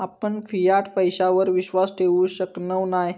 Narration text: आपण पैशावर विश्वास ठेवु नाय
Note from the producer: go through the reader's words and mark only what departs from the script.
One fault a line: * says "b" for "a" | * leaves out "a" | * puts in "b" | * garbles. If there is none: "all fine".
* puts in "फियाट"
* puts in "शकणव"